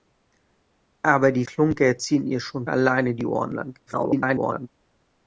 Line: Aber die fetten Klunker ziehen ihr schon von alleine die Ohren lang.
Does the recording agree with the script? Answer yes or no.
no